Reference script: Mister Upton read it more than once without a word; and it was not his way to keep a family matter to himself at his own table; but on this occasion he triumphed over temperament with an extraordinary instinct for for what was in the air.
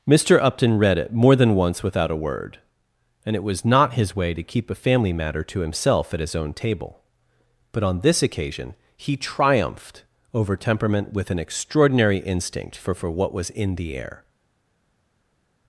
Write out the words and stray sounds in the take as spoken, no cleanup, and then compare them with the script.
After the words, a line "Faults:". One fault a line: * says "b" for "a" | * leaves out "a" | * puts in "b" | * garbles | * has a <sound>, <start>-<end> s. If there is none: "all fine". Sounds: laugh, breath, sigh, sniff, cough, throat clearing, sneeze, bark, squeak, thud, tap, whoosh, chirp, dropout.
Mister Upton read it more than once without a word; and it was not his way to keep a family matter to himself at his own table; but on this occasion he triumphed over temperament with an extraordinary instinct for for what was in the air.
Faults:
all fine